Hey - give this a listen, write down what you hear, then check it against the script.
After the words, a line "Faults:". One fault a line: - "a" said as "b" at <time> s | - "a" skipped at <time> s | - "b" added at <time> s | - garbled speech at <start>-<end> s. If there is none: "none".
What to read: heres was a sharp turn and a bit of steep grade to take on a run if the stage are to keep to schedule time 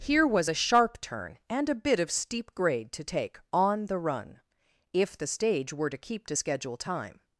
here was a sharp turn and a bit of steep grade to take on the run if the stage were to keep to schedule time
Faults:
- "heres" said as "here" at 0.0 s
- "a" said as "the" at 3.9 s
- "are" said as "were" at 5.7 s